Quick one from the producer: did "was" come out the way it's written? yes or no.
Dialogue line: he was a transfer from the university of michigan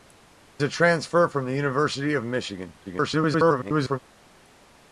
no